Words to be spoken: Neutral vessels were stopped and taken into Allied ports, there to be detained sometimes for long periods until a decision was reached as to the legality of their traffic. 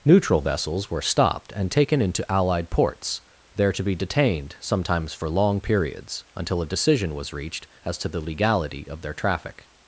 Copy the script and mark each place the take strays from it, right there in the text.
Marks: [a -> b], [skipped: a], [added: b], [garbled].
Neutral vessels were stopped and taken into Allied ports, there to be detained sometimes for long periods until a decision was reached as to the legality of their traffic.